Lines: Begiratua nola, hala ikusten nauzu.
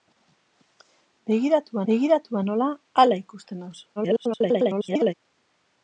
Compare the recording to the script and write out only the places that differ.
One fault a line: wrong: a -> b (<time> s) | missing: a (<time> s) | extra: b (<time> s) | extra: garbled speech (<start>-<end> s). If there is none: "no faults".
extra: begiratua (1.9 s)
extra: garbled speech (4.0-5.1 s)